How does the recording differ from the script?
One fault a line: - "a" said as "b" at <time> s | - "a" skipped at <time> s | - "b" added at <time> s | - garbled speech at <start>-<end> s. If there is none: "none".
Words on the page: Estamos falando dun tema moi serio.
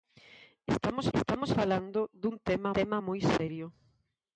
- "estamos" added at 1.2 s
- "tema" added at 2.8 s